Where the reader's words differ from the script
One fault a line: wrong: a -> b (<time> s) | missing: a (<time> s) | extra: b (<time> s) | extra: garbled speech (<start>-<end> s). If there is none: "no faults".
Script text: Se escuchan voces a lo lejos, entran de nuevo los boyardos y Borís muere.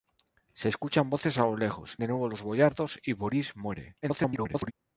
missing: entran (2.0 s)
extra: garbled speech (4.0-4.7 s)